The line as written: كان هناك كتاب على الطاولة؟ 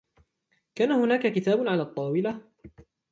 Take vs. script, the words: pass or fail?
pass